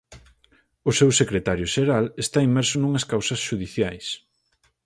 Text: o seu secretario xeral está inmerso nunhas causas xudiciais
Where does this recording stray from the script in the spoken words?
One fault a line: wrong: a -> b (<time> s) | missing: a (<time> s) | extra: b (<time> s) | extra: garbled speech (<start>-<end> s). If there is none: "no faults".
no faults